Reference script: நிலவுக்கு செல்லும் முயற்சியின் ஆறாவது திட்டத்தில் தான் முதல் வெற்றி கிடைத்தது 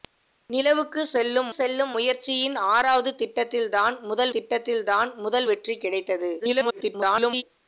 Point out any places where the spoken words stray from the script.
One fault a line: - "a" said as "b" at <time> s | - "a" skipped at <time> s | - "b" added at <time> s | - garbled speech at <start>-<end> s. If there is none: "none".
- "செல்லும்" added at 1.5 s
- "திட்டத்தில் தான் முதல்" added at 4.3 s
- garbled speech at 6.4-7.4 s